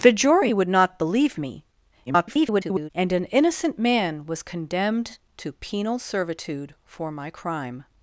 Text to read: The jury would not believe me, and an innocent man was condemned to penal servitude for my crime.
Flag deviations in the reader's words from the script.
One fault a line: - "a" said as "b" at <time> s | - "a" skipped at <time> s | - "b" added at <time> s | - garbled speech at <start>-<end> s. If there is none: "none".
- garbled speech at 2.1-2.9 s